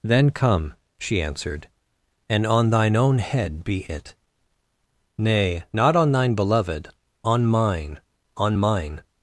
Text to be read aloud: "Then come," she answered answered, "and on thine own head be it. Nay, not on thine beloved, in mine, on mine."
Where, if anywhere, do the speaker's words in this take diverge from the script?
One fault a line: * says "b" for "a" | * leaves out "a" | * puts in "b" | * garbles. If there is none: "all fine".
* leaves out "answered"
* says "on" for "in"